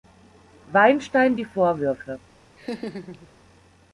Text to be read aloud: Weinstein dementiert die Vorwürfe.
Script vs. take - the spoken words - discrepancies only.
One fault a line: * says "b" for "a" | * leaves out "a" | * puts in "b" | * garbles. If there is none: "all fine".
* leaves out "dementiert"